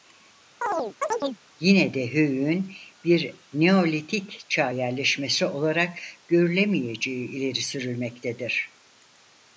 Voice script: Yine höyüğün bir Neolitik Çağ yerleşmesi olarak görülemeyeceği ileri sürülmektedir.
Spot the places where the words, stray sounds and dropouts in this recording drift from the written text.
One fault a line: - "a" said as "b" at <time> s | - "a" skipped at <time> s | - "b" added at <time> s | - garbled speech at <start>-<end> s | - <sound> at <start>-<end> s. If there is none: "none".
- chirp at 0.6-1.4 s
- "de" added at 1.9 s